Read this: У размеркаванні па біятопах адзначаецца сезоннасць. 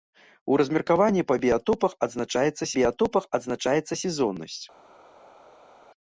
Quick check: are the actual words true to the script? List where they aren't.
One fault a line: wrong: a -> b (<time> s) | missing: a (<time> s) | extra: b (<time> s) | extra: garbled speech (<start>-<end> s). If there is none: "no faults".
extra: біятопах адзначаецца (2.8 s)